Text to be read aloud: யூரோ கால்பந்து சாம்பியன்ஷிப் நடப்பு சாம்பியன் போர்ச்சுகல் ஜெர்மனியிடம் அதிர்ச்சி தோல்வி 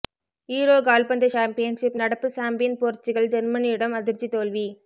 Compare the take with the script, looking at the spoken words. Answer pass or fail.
pass